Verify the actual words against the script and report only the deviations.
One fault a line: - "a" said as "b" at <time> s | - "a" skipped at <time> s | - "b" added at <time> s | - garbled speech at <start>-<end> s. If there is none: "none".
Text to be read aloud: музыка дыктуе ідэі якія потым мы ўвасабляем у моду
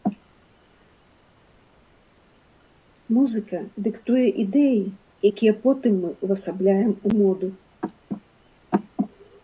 none